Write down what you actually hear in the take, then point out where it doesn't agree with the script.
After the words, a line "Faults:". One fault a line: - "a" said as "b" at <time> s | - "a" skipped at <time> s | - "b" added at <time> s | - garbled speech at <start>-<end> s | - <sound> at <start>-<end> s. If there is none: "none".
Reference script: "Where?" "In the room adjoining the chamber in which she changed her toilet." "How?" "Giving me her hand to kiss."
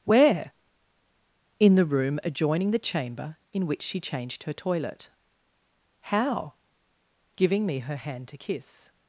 "Where?" "In the room adjoining the chamber in which she changed her toilet." "How?" "Giving me her hand to kiss."
Faults:
none